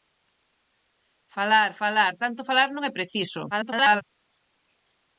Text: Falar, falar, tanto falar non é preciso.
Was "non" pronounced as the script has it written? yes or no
yes